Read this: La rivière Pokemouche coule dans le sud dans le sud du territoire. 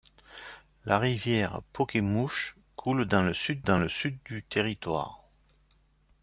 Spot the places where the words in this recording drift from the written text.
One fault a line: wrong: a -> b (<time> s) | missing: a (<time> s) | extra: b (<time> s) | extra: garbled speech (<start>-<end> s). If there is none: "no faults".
no faults